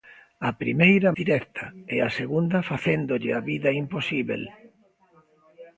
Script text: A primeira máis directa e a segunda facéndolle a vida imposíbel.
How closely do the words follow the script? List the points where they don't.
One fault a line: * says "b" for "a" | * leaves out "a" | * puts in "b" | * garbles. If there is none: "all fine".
* leaves out "máis"